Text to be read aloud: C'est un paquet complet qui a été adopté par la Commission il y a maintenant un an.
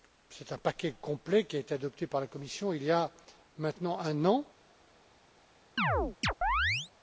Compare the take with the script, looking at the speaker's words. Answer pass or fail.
pass